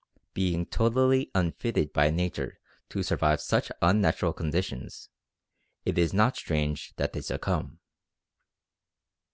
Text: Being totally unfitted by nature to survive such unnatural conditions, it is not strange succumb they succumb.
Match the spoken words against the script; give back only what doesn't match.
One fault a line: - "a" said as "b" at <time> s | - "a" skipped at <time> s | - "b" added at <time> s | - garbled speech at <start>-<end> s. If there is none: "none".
- "succumb" said as "that" at 7.0 s